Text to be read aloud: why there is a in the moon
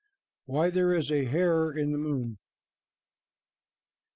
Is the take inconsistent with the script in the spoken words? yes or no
yes